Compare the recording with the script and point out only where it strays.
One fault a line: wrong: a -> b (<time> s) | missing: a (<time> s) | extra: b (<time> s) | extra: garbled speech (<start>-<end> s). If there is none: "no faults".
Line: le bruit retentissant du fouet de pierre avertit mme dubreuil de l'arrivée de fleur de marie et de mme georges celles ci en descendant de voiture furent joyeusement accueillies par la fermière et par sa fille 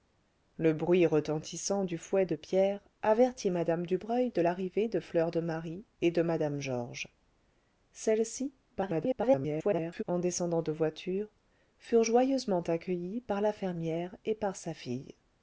extra: garbled speech (8.7-10.0 s)